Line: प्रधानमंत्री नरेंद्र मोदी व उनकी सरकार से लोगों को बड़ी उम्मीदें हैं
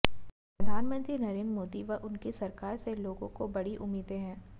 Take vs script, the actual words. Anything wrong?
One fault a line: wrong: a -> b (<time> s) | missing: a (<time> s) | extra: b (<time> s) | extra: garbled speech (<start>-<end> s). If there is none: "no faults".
no faults